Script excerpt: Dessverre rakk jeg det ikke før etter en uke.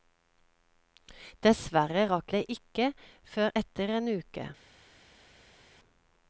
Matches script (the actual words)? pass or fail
fail